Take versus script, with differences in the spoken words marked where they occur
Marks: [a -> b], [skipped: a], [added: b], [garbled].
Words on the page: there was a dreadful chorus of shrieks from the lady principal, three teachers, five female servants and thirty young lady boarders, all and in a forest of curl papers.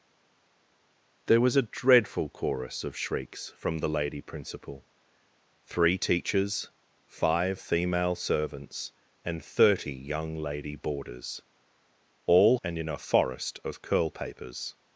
there was a dreadful chorus of shrieks from the lady principal, three teachers, five female servants and thirty young lady boarders, all and in a forest of curl papers.